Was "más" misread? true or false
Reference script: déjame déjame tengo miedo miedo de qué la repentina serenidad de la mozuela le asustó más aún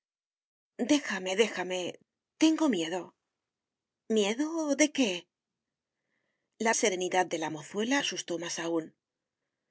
false